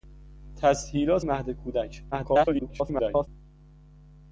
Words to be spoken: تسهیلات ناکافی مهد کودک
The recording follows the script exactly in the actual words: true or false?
false